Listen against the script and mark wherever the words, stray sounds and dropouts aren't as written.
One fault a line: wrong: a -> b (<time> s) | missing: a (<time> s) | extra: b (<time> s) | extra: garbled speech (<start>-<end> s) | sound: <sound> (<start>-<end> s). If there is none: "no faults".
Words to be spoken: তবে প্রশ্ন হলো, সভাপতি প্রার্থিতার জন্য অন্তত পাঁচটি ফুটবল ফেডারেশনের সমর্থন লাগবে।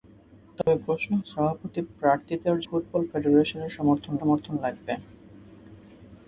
sound: dropout (0.6-0.7 s)
missing: হলো (1.1 s)
missing: জন্য অন্তত পাঁচটি (2.6 s)
extra: সমর্থন (4.2 s)